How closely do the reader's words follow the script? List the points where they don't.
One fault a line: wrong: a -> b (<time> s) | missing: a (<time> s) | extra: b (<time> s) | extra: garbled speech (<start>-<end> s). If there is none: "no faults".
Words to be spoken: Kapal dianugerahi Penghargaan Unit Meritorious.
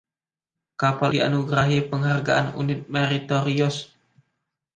no faults